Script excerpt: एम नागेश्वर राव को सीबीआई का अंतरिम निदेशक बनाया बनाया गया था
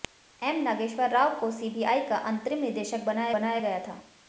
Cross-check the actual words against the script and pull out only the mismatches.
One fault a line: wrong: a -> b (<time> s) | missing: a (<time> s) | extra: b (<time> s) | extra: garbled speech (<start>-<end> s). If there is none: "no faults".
no faults